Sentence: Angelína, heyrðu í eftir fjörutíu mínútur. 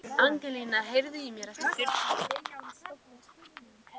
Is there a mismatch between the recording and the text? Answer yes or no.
yes